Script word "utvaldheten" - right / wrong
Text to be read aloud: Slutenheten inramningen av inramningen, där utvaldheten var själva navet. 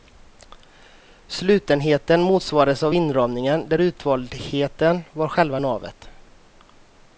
right